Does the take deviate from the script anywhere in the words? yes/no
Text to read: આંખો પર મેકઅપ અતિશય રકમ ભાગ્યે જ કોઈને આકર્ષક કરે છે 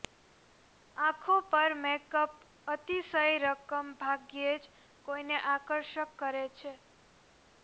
no